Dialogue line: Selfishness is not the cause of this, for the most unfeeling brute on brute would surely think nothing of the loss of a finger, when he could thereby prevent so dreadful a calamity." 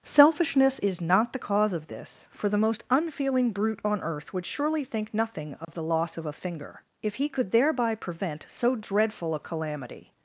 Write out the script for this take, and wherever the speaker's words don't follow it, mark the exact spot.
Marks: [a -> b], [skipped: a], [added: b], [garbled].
Selfishness is not the cause of this, for the most unfeeling brute on [brute -> earth] would surely think nothing of the loss of a finger, [when -> if] he could thereby prevent so dreadful a calamity."